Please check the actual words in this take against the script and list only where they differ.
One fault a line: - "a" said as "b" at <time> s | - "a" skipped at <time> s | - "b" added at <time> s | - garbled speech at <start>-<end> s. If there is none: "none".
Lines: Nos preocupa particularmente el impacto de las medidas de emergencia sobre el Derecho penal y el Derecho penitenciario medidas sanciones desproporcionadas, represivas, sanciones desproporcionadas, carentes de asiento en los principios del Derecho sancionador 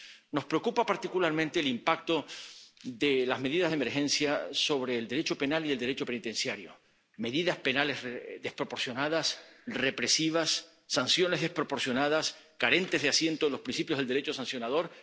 - "sanciones" said as "penales" at 7.6 s